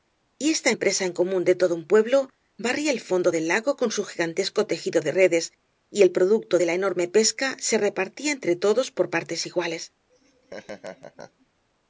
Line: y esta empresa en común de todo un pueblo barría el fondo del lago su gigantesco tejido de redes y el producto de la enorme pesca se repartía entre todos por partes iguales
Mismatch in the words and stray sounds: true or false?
true